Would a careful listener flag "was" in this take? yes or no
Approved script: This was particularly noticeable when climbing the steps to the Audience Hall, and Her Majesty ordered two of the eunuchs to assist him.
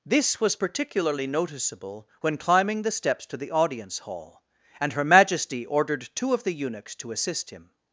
no